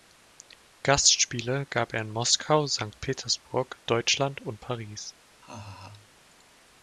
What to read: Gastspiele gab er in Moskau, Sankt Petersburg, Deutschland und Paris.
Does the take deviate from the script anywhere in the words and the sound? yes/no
yes